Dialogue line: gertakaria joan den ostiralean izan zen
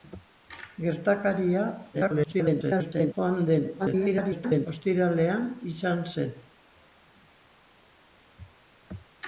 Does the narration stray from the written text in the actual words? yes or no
yes